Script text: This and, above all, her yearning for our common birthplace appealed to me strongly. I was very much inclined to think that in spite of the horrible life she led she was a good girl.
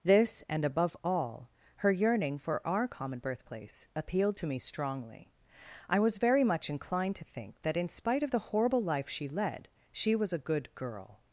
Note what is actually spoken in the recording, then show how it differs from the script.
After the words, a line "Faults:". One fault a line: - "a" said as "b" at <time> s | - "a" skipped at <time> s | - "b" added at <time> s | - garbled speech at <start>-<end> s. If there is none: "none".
This and, above all, her yearning for our common birthplace appealed to me strongly. I was very much inclined to think that in spite of the horrible life she led she was a good girl.
Faults:
none